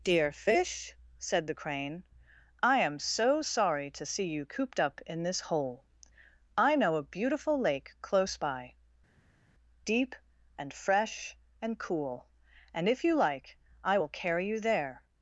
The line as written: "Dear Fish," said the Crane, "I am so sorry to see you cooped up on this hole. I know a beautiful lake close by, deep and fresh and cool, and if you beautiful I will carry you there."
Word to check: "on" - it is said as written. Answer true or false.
false